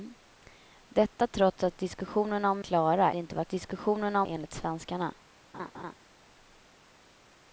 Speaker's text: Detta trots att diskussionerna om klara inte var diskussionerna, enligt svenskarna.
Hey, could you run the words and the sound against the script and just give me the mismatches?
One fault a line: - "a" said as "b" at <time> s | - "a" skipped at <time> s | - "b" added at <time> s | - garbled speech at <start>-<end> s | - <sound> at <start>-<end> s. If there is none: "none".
- laugh at 5.5-6.0 s